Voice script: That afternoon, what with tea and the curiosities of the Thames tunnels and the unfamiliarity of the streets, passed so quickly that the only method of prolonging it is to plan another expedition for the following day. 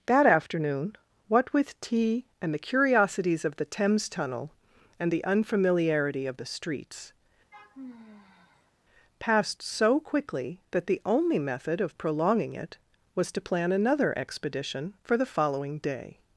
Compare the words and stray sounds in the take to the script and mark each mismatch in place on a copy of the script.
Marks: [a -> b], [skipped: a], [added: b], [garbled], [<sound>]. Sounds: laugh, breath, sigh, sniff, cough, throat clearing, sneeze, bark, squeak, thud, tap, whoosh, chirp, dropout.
That afternoon, what with tea and the curiosities of the Thames [tunnels -> tunnel] and the unfamiliarity of the streets, [sigh] passed so quickly that the only method of prolonging it [is -> was] to plan another expedition for the following day.